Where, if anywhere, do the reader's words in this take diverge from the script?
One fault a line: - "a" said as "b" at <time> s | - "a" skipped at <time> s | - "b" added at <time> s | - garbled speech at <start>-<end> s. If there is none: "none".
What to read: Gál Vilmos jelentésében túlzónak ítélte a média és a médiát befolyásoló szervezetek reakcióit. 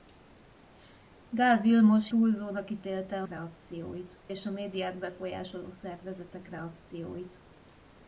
- "jelentésében" skipped at 2.1 s
- "média" said as "reakcióit" at 3.3 s